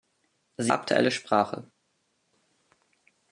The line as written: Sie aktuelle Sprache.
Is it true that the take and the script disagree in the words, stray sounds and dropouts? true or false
false